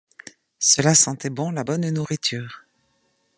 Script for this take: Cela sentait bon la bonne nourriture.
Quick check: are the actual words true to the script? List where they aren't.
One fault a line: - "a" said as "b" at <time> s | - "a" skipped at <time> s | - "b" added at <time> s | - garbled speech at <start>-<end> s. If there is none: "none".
none